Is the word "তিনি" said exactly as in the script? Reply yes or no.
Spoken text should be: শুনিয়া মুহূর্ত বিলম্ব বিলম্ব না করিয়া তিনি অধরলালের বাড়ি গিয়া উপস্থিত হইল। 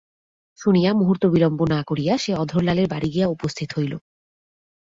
no